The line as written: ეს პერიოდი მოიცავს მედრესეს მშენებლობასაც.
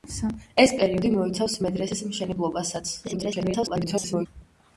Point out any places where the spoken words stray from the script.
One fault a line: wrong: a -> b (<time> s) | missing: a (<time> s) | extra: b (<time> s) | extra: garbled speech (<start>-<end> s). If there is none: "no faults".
extra: garbled speech (3.0-4.3 s)